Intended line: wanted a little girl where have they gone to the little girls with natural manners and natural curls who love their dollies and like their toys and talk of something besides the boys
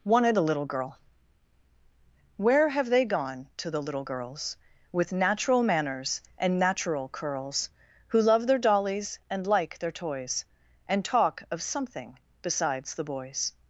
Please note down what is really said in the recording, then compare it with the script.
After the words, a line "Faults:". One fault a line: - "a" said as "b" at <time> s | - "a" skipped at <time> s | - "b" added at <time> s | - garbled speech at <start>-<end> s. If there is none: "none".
wanted a little girl where have they gone to the little girls with natural manners and natural curls who love their dollies and like their toys and talk of something besides the boys
Faults:
none